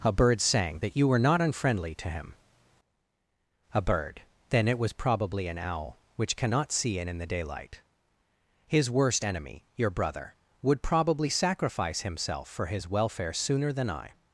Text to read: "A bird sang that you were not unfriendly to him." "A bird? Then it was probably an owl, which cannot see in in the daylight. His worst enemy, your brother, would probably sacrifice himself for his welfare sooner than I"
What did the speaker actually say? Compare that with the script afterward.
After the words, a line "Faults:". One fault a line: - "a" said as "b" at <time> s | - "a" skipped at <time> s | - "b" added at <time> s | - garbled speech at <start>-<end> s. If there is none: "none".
"A bird sang that you were not unfriendly to him." "A bird? Then it was probably an owl, which cannot see in in the daylight. His worst enemy, your brother, would probably sacrifice himself for his welfare sooner than I"
Faults:
none